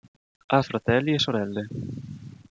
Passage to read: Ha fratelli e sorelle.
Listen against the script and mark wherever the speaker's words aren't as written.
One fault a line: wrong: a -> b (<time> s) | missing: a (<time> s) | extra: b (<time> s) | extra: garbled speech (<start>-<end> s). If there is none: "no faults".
no faults